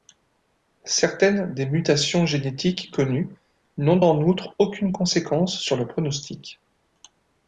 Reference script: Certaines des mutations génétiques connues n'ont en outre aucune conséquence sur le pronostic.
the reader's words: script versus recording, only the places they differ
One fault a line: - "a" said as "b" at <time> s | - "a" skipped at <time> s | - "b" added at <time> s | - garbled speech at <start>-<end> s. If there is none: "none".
none